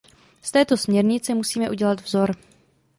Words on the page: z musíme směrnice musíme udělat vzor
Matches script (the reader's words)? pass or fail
fail